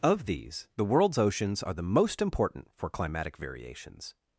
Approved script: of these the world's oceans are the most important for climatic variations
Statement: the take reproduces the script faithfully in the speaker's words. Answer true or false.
true